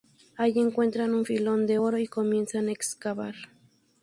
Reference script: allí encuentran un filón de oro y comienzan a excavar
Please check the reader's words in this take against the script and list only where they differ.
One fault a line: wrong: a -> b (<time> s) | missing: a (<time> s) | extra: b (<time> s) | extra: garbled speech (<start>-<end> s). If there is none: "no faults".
no faults